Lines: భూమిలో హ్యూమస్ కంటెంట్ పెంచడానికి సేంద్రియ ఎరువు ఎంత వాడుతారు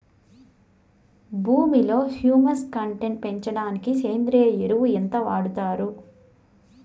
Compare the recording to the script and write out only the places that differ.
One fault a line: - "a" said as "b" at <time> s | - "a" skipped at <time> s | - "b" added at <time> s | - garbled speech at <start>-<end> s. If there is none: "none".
none